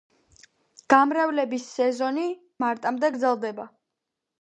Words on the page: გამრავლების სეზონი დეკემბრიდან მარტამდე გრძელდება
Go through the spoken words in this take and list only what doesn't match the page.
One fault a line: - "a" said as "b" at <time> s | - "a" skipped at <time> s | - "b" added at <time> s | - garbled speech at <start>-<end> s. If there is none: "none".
- "დეკემბრიდან" skipped at 2.2 s